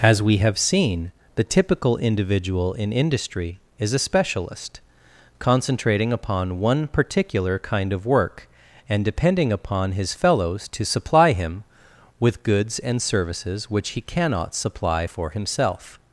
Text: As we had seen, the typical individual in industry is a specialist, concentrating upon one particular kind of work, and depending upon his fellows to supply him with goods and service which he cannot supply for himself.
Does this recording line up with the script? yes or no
no